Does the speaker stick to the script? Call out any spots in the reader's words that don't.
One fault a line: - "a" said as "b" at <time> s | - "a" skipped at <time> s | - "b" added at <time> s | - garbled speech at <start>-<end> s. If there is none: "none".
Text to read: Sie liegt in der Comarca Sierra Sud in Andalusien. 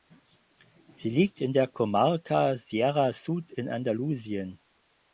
none